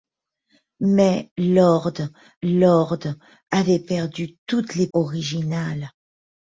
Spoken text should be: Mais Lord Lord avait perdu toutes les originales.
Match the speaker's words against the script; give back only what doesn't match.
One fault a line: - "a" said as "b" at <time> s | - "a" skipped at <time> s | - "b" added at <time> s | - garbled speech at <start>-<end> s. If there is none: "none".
none